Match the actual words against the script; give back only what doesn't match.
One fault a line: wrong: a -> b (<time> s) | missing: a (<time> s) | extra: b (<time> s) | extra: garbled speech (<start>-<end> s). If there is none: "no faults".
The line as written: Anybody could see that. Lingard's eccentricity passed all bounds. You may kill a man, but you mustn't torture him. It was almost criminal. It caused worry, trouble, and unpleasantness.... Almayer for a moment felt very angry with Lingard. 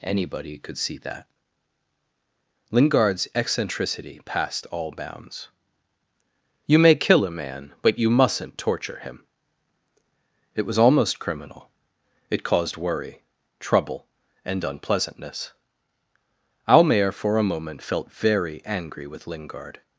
no faults